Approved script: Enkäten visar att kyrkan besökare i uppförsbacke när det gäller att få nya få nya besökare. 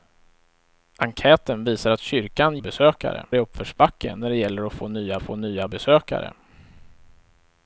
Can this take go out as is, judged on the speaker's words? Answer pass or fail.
pass